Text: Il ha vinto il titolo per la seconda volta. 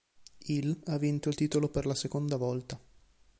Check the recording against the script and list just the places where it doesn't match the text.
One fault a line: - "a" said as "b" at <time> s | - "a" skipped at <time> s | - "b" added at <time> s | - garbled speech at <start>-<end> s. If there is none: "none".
none